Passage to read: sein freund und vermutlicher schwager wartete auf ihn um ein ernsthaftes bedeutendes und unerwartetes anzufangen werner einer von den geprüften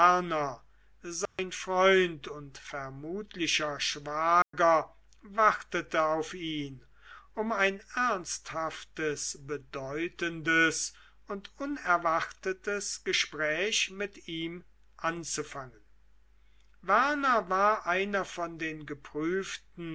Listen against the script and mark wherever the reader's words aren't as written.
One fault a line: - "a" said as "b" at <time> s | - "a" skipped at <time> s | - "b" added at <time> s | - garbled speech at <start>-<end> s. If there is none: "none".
- "gespräch mit ihm" added at 13.0 s
- "war" added at 17.5 s